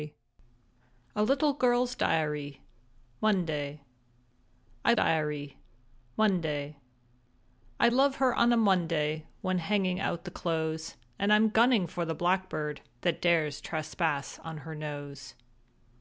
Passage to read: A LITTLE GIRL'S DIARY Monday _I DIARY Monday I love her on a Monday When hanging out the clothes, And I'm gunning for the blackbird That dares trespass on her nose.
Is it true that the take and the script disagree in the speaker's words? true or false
false